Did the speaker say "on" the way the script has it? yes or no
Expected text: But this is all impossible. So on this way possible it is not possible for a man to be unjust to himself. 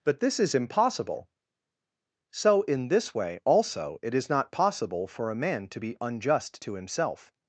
no